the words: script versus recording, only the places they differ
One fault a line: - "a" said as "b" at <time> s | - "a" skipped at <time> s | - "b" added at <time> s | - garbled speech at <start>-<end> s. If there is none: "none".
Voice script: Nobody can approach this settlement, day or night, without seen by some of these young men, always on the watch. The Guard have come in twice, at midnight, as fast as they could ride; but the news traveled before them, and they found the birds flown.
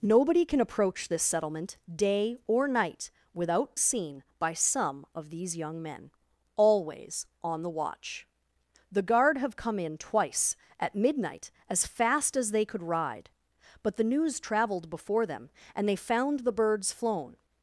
none